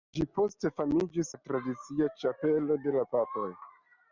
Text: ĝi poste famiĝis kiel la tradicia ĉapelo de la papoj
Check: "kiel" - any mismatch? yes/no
yes